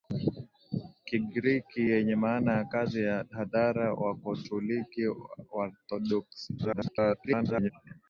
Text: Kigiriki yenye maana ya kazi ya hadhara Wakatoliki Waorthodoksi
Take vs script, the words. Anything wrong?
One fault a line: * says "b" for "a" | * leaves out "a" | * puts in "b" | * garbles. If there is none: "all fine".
* garbles